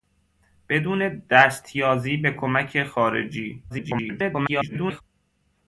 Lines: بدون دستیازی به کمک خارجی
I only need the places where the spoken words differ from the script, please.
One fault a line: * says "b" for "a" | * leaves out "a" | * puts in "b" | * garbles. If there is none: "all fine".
* garbles